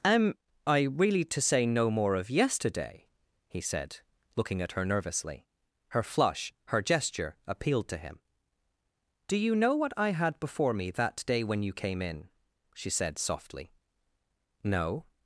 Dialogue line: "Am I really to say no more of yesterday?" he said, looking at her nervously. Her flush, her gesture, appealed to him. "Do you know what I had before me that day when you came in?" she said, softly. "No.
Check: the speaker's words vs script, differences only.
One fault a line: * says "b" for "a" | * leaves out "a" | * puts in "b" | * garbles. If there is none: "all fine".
all fine